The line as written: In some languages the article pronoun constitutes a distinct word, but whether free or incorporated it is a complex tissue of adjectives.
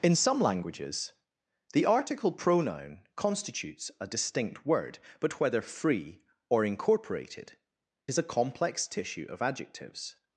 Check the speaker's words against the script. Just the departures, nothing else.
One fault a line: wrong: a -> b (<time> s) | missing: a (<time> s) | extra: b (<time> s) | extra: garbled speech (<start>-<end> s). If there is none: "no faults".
missing: it (7.6 s)